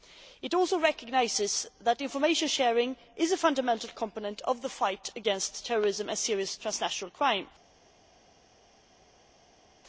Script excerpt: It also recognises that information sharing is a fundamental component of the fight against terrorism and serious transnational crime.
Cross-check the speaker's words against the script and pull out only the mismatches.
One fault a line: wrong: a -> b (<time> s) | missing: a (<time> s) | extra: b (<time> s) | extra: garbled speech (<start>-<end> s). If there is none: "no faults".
no faults